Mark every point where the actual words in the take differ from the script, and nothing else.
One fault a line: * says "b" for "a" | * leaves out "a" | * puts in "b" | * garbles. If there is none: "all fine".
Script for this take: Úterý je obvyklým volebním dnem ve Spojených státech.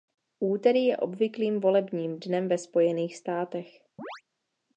all fine